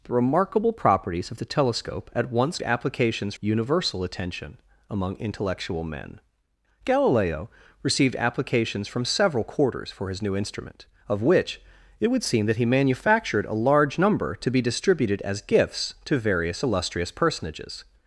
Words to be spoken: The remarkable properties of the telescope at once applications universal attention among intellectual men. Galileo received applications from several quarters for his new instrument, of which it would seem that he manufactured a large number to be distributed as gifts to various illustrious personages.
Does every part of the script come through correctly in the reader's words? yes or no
yes